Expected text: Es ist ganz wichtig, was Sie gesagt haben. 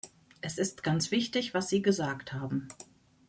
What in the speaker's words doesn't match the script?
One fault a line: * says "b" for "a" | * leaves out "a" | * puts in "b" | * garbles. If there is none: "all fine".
all fine